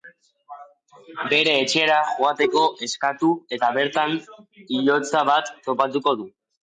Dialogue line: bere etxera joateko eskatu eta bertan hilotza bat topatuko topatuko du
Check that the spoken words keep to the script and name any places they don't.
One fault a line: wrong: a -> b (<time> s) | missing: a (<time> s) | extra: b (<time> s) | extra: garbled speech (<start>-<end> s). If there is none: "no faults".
missing: topatuko (6.2 s)